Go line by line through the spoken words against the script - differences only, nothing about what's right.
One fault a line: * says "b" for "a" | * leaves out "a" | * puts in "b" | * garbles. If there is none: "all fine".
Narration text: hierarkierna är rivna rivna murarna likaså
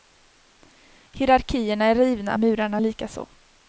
* leaves out "rivna"